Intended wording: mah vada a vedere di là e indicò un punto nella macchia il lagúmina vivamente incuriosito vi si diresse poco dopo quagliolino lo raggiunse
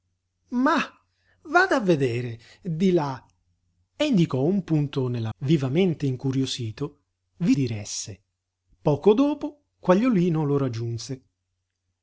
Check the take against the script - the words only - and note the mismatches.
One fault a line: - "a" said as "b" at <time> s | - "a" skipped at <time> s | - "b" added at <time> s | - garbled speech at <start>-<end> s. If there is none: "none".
- "macchia il lagúmina" skipped at 5.3 s
- "si" skipped at 7.5 s